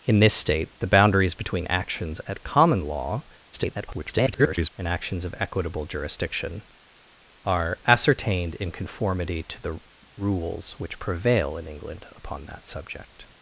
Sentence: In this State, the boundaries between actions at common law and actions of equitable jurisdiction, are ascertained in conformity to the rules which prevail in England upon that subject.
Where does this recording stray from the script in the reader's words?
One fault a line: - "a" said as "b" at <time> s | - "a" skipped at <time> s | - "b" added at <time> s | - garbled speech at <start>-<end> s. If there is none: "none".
- garbled speech at 3.5-4.7 s